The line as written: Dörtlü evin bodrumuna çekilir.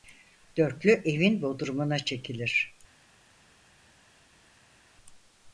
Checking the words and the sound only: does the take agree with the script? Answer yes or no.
yes